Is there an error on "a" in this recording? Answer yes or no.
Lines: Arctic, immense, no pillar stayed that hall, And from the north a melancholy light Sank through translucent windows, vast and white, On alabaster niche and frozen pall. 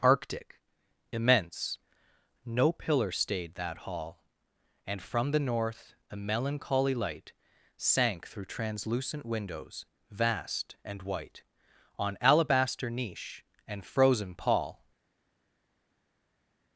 no